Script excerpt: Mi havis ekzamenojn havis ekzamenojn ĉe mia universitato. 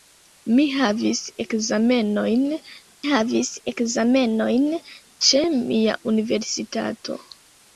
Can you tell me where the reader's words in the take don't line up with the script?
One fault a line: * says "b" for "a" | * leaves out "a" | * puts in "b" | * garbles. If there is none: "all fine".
all fine